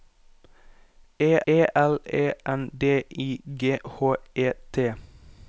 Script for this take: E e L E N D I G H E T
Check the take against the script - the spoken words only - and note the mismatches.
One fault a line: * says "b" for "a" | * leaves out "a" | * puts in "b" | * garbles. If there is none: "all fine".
all fine